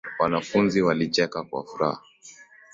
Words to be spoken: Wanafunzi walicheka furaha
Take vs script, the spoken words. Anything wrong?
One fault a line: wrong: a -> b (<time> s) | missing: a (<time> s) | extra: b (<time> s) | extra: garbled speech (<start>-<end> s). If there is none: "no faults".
extra: kwa (1.4 s)